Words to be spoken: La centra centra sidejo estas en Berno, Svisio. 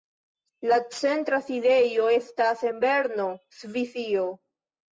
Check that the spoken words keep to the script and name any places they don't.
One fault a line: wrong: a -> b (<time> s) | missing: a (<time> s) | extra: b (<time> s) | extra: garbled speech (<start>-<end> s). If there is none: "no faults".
missing: centra (1.4 s)